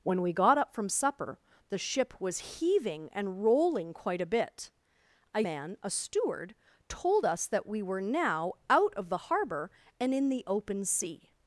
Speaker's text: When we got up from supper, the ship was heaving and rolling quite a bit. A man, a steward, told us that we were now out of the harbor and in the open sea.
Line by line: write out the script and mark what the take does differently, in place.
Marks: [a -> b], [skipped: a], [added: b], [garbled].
When we got up from supper, the ship was heaving and rolling quite a bit. A man, a steward, told us that we were now out of the harbor and in the open sea.